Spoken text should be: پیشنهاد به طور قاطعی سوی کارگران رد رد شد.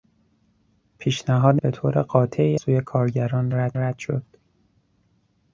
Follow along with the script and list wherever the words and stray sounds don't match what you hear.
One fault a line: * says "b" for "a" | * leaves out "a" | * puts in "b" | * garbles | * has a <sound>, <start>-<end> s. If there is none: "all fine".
all fine